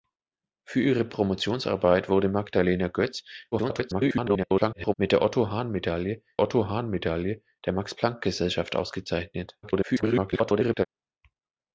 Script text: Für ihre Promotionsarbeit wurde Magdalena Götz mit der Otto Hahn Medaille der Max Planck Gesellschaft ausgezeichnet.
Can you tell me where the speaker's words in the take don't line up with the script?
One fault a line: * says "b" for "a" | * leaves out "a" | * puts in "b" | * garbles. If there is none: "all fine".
* garbles
* puts in "Otto Hahn Medaille"
* garbles